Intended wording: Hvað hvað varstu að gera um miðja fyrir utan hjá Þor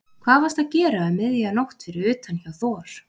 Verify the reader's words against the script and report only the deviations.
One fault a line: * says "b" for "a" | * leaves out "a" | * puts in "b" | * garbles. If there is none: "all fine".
* leaves out "hvað"
* puts in "nótt"